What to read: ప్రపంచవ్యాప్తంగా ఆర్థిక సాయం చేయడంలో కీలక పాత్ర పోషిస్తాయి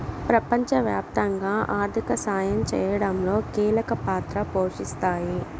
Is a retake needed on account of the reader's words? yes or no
no